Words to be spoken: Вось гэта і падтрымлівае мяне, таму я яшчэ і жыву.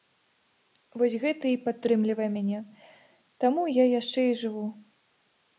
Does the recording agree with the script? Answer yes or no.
yes